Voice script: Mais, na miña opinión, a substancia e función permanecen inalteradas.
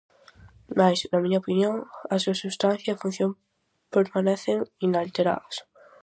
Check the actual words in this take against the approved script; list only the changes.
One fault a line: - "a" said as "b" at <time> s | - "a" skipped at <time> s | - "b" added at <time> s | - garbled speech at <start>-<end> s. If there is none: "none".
- "súa" added at 2.2 s